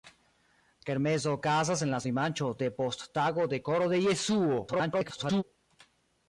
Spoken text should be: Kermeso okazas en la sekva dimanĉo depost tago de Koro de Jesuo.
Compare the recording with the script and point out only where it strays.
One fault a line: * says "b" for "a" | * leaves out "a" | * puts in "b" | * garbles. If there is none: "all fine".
* leaves out "sekva"
* garbles